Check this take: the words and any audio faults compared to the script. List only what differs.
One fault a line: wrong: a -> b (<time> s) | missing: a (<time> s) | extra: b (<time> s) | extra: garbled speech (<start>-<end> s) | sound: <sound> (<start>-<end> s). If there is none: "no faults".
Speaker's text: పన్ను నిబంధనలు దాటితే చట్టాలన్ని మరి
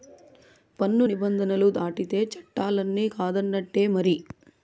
extra: కాదన్నట్టే (3.1 s)